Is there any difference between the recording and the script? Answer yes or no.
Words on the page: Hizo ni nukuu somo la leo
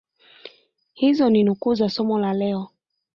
yes